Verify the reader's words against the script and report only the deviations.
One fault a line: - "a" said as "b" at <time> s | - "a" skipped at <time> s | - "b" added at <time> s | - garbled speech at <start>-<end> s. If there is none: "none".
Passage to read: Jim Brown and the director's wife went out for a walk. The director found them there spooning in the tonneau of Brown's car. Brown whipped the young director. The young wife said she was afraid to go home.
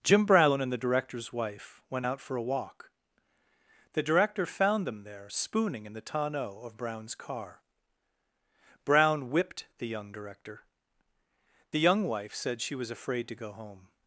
none